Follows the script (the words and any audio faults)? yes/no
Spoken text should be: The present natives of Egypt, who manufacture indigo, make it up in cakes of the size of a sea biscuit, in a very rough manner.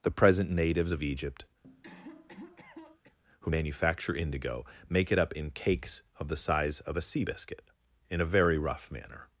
no